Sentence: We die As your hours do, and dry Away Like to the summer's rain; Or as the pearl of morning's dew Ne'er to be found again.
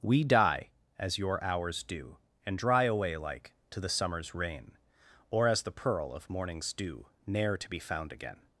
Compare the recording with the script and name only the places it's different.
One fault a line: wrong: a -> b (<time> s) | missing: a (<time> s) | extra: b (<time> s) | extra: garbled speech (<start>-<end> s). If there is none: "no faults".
no faults